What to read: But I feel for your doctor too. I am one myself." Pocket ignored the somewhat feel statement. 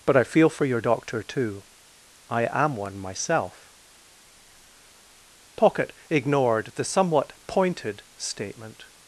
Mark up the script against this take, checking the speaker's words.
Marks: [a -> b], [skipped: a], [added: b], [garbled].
But I feel for your doctor too. I am one myself." Pocket ignored the somewhat [feel -> pointed] statement.